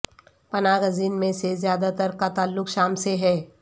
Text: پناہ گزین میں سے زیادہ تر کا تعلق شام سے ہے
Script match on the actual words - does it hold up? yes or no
yes